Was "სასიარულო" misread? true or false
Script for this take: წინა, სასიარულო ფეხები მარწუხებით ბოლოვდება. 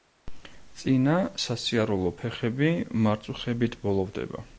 false